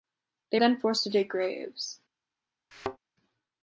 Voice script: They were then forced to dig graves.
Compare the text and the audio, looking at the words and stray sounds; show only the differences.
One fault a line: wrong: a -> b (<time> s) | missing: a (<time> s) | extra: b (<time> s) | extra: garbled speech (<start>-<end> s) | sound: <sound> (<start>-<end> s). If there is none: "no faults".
missing: were (0.6 s)
sound: thud (2.7-3.0 s)